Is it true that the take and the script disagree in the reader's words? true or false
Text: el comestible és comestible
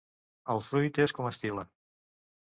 true